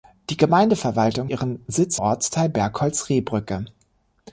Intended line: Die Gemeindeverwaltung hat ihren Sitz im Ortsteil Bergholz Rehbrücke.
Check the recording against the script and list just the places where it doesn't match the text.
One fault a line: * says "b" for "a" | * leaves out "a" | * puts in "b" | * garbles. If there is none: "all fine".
* leaves out "hat"
* leaves out "im"